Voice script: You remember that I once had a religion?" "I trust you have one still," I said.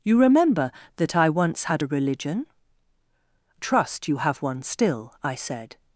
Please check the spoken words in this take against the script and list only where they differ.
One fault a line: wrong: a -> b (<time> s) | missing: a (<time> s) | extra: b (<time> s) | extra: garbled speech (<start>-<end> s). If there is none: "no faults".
missing: I (2.5 s)